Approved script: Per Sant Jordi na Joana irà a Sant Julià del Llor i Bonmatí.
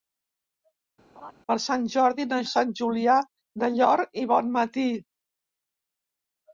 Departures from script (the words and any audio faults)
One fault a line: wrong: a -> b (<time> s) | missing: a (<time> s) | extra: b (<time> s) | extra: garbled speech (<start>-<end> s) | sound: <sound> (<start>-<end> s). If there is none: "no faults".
sound: laugh (1.2-1.3 s)
missing: Joana irà (2.4 s)